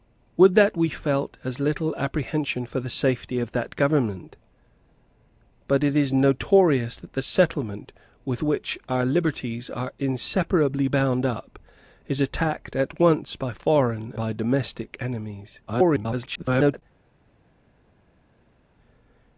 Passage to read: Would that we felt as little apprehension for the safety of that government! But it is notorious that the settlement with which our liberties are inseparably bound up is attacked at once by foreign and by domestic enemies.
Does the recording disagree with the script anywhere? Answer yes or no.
yes